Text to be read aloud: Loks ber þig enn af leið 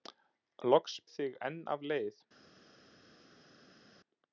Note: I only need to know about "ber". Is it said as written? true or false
false